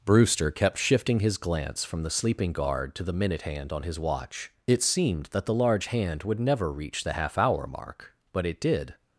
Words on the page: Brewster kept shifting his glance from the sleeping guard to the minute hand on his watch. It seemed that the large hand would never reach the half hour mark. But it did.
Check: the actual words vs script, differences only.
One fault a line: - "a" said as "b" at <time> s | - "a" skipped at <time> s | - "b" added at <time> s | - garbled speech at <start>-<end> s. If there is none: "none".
none